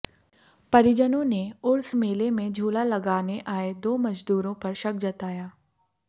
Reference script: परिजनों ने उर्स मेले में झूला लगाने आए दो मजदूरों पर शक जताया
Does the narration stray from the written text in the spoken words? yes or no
no